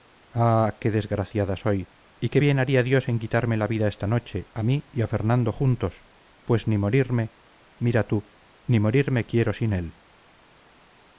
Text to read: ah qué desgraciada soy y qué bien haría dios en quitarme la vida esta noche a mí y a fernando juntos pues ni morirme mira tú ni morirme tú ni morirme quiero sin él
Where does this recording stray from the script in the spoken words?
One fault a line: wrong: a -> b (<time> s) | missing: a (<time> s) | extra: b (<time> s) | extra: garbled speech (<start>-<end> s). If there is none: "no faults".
missing: tú ni morirme (9.3 s)